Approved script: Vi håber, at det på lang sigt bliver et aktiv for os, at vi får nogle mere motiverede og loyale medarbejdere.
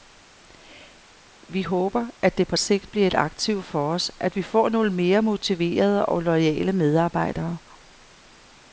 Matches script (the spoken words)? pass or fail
fail